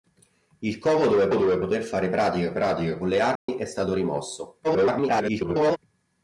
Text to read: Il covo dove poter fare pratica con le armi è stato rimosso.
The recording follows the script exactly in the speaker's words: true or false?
false